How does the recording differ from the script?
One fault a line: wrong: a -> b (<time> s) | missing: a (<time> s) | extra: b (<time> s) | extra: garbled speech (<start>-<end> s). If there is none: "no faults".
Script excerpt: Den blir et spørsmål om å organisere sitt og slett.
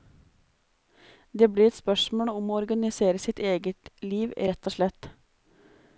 wrong: Den -> Det (1.3 s)
extra: eget liv rett (3.4 s)